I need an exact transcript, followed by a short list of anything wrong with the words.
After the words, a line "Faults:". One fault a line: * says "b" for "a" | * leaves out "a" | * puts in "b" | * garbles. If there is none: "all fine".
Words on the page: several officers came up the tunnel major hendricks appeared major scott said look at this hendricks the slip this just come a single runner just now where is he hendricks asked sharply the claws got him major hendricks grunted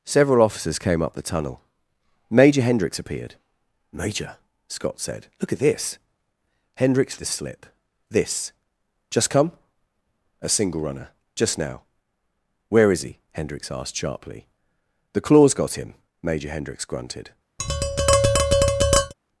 several officers came up the tunnel major hendricks appeared major scott said look at this hendricks the slip this just come a single runner just now where is he hendricks asked sharply the claws got him major hendricks grunted
Faults:
all fine